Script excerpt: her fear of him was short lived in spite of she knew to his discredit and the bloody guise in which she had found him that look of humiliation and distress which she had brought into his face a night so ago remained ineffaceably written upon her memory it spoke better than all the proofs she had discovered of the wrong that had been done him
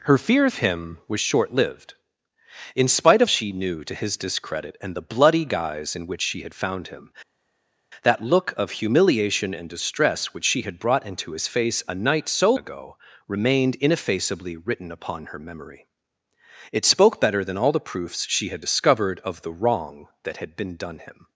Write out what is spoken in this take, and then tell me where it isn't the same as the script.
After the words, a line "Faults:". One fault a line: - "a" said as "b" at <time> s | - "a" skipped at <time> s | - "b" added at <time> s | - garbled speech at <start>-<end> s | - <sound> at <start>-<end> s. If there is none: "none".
her fear of him was short lived in spite of she knew to his discredit and the bloody guise in which she had found him that look of humiliation and distress which she had brought into his face a night so ago remained ineffaceably written upon her memory it spoke better than all the proofs she had discovered of the wrong that had been done him
Faults:
none